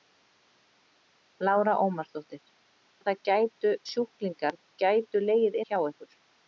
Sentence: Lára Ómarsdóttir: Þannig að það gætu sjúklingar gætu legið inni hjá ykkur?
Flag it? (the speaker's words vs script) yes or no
yes